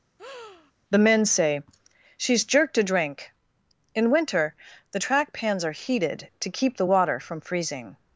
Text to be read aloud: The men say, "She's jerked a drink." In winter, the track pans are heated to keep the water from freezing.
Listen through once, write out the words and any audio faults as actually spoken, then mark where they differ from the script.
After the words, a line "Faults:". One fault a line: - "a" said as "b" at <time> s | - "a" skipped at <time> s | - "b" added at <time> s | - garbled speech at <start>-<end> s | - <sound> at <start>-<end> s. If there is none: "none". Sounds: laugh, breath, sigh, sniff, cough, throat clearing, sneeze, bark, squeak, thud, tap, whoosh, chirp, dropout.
The men say, "She's jerked a drink." In winter, the track pans are heated to keep the water from freezing.
Faults:
- breath at 0.2-0.7 s